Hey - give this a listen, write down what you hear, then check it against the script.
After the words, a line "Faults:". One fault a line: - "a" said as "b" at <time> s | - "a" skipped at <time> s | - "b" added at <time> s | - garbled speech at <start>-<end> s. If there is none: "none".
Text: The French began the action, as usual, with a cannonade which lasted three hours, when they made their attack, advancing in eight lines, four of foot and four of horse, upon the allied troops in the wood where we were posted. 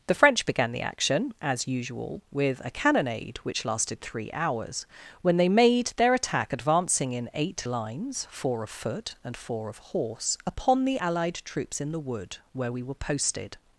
The French began the action, as usual, with a cannonade which lasted three hours, when they made their attack, advancing in eight lines, four of foot and four of horse, upon the allied troops in the wood where we were posted.
Faults:
none